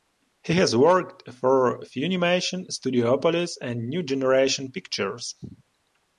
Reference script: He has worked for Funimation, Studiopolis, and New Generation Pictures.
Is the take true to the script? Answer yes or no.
yes